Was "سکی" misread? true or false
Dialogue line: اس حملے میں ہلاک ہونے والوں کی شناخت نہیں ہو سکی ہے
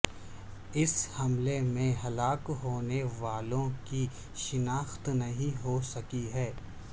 false